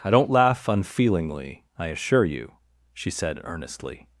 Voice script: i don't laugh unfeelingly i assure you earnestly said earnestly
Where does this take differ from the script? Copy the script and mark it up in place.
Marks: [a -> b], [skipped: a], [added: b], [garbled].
i don't laugh unfeelingly i assure you [earnestly -> she] said earnestly